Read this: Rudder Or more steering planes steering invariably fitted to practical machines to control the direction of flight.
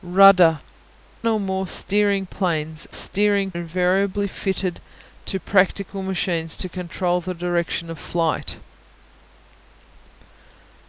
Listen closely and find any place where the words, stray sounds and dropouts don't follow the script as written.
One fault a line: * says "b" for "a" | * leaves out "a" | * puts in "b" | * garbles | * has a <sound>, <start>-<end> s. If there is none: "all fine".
all fine